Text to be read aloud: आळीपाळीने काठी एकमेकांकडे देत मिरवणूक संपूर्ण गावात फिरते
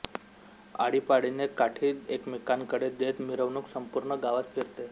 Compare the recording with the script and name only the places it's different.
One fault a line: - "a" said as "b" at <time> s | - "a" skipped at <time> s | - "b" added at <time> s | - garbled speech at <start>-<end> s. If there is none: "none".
none